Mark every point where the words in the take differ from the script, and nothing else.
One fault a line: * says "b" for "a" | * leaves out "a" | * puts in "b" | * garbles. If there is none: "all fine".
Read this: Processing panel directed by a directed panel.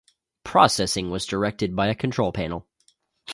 * says "was" for "panel"
* says "control" for "directed"